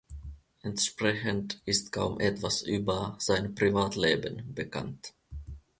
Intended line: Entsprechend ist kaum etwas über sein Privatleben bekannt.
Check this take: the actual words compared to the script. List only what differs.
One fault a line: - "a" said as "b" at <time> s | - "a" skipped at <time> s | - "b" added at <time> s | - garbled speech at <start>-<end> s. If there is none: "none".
none